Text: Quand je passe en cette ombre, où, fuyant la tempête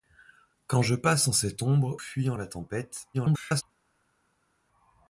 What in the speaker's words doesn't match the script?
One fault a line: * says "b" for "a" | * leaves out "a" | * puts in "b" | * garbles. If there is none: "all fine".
* leaves out "où"
* garbles